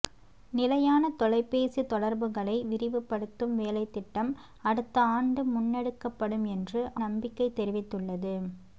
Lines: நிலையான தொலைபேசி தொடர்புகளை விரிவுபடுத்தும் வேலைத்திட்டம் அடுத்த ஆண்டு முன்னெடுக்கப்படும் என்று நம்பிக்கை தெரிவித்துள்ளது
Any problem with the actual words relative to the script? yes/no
no